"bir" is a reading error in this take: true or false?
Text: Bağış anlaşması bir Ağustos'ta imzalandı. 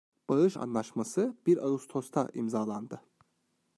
false